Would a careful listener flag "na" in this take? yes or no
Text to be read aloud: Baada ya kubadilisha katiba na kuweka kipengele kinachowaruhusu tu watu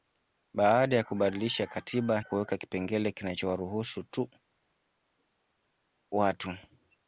yes